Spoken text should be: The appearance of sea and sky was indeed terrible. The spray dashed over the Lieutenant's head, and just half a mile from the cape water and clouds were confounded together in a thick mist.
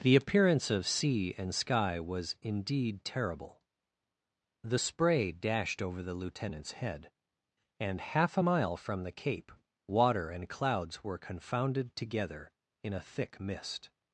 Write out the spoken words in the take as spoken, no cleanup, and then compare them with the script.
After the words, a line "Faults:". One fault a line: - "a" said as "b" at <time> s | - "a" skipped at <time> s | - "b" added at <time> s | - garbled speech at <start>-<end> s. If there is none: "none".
The appearance of sea and sky was indeed terrible. The spray dashed over the Lieutenant's head, and half a mile from the cape water and clouds were confounded together in a thick mist.
Faults:
- "just" skipped at 8.0 s